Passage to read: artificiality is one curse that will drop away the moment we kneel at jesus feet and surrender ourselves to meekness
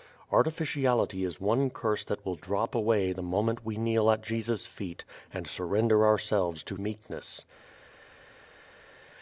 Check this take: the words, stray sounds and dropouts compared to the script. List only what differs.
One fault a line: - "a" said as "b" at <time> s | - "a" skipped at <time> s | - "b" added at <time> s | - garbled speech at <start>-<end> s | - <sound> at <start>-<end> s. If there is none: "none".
none